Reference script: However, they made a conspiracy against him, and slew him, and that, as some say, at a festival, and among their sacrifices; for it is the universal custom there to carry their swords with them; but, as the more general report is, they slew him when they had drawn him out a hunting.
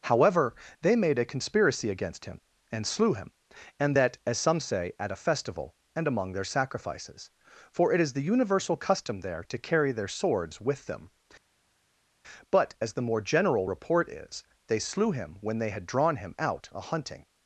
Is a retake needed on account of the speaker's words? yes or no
no